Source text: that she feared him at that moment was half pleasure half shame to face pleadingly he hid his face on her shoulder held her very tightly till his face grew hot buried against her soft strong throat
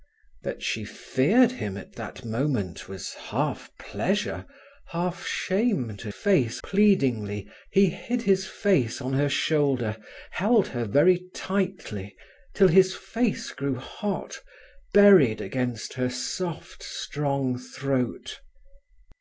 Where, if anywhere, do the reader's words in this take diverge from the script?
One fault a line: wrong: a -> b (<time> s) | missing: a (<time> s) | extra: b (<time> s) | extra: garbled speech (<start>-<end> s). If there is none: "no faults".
no faults